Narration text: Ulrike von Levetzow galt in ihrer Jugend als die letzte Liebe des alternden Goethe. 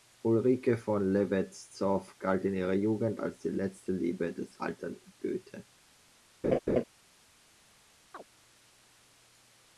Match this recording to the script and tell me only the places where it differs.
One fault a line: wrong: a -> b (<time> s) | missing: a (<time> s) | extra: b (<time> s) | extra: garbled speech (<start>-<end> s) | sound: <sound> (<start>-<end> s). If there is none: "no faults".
sound: laugh (6.4-6.8 s)
sound: chirp (8.1-8.2 s)